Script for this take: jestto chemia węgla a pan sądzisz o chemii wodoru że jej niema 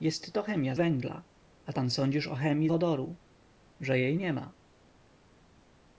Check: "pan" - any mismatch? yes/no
no